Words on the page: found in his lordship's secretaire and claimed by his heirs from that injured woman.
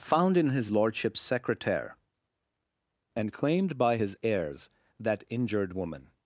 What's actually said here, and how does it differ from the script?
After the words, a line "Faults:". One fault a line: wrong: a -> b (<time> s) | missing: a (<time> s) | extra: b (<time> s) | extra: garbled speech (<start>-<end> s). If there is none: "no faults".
found in his lordship's secretaire and claimed by his heirs that injured woman.
Faults:
missing: from (4.7 s)